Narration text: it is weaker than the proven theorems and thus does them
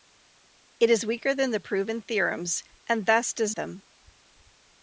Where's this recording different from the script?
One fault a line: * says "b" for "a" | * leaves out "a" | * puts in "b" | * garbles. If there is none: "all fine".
all fine